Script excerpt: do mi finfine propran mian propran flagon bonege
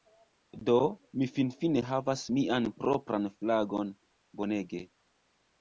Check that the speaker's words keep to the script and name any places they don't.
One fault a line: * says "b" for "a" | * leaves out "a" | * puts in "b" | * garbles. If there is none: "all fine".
* says "havas" for "propran"